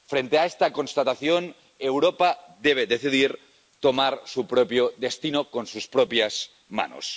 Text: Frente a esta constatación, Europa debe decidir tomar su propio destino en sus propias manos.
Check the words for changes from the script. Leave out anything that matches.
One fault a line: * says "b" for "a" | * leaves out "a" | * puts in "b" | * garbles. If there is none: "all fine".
all fine